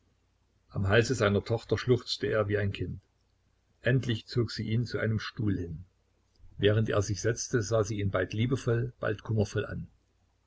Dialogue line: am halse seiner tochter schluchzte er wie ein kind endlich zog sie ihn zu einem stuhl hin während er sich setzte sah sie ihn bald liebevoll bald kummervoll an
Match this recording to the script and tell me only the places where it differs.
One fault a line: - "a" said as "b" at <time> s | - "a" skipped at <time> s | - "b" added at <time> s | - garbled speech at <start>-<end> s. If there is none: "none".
none